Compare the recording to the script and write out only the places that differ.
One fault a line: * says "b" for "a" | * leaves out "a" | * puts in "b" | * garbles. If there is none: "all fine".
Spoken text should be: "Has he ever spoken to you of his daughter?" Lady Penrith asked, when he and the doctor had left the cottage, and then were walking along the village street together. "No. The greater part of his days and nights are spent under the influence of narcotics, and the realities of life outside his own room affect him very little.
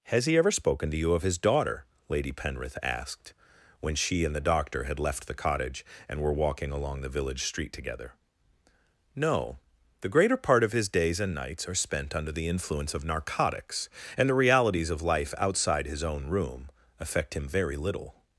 * says "she" for "he"
* leaves out "then"